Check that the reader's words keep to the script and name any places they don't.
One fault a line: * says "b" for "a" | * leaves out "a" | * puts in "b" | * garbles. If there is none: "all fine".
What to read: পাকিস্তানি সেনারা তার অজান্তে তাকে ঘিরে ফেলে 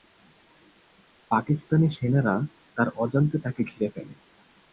all fine